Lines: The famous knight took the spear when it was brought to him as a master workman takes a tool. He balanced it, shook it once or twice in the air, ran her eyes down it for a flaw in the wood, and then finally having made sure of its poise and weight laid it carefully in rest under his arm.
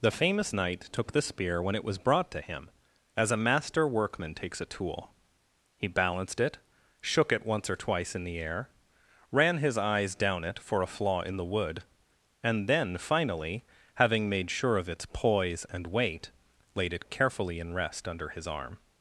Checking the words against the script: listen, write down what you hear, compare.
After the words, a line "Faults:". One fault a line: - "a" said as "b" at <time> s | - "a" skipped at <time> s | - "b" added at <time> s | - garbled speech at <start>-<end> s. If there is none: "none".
The famous knight took the spear when it was brought to him as a master workman takes a tool. He balanced it, shook it once or twice in the air, ran his eyes down it for a flaw in the wood, and then finally having made sure of its poise and weight laid it carefully in rest under his arm.
Faults:
- "her" said as "his" at 9.6 s